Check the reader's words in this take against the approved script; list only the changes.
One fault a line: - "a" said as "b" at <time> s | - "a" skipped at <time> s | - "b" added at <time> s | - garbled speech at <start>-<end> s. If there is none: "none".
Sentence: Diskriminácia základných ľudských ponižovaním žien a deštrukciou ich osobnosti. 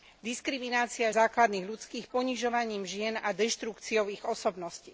none